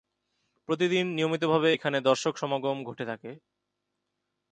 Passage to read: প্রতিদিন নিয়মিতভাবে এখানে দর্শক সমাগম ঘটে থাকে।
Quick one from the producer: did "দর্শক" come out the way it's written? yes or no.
yes